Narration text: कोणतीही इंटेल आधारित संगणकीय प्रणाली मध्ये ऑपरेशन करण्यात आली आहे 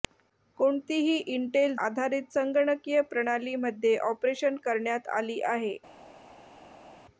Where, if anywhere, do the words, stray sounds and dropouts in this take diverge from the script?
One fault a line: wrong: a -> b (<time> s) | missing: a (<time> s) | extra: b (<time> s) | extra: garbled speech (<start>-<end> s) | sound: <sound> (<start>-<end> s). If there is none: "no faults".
no faults